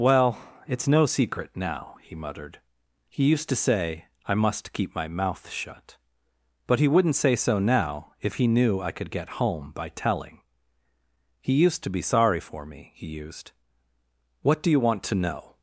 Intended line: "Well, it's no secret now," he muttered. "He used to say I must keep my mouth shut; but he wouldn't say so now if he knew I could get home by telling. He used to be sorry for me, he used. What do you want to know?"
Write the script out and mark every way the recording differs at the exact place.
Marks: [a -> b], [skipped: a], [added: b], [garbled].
"Well, it's no secret now," he muttered. "He used to say I must keep my mouth shut; but he wouldn't say so now if he knew I could get home by telling. He used to be sorry for me, he used. What do you want to know?"